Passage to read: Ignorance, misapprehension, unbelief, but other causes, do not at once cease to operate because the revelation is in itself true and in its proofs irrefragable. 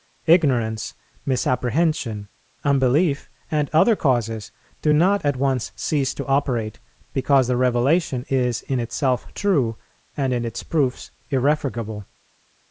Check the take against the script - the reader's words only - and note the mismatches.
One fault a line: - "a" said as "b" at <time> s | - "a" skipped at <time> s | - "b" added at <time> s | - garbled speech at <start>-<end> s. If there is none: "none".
- "but" said as "and" at 3.5 s